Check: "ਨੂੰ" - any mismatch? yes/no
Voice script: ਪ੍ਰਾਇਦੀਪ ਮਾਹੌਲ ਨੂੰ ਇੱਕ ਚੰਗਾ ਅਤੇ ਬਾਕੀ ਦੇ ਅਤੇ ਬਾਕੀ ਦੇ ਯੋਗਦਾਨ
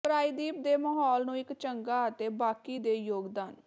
no